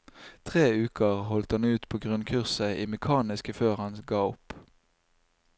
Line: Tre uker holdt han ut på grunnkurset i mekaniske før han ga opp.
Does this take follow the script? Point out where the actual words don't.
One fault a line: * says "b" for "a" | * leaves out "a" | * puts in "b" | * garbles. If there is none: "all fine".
all fine